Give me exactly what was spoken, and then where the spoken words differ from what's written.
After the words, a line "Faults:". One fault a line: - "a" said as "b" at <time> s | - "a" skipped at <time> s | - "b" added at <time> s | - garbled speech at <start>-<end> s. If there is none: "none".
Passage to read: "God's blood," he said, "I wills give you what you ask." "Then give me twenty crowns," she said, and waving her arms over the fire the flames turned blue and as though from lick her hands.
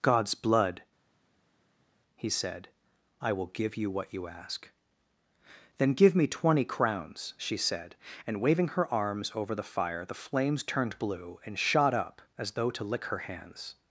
"God's blood," he said, "I will give you what you ask." "Then give me twenty crowns," she said, and waving her arms over the fire the flames turned blue and shot up as though to lick her hands.
Faults:
- "wills" said as "will" at 3.3 s
- "shot up" added at 11.6 s
- "from" said as "to" at 12.7 s